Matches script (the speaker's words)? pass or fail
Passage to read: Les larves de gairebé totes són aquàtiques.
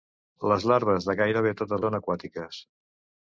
pass